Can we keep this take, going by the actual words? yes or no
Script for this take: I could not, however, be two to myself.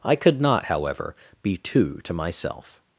yes